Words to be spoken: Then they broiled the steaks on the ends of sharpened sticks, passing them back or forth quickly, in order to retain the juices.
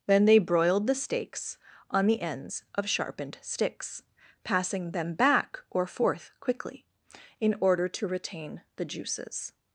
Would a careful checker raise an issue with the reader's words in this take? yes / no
no